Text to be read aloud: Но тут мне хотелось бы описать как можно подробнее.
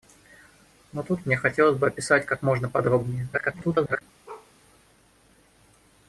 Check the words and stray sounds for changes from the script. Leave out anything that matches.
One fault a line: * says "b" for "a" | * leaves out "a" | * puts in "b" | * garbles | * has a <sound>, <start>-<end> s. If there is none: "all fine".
* garbles
* has a bark, 4.3-4.5 s